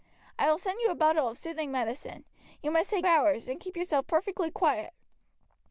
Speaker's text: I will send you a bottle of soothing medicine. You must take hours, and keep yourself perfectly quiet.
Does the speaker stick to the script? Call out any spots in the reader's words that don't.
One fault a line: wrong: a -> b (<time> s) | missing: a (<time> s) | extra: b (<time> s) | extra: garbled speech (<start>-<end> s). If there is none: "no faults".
no faults